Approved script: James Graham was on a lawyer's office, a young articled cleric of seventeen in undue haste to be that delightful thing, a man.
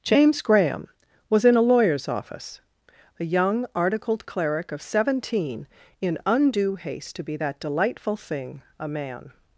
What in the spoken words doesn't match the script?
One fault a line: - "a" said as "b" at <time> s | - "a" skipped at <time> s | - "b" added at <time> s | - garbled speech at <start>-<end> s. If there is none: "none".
- "on" said as "in" at 1.4 s